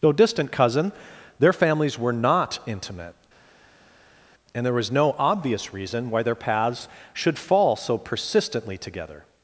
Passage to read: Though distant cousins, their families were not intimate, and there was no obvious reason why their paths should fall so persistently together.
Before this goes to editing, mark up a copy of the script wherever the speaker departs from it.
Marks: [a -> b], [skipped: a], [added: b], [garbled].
Though distant [cousins, -> cousin] their families were not intimate, and there was no obvious reason why their paths should fall so persistently together.